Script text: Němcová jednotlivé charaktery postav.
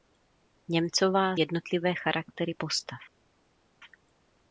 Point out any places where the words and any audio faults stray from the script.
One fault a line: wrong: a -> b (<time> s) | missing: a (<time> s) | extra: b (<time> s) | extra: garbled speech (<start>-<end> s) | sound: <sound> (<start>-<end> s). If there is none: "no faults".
no faults